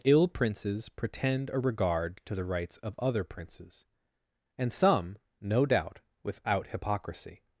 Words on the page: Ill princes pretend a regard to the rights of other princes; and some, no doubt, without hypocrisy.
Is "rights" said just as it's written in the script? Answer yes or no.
yes